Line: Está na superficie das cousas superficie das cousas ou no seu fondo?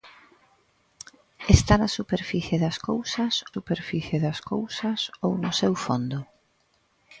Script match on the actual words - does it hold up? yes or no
yes